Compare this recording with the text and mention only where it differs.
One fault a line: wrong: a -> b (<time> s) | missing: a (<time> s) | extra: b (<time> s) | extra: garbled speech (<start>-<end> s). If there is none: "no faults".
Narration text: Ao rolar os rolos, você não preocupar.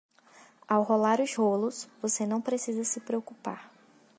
extra: precisa se (2.4 s)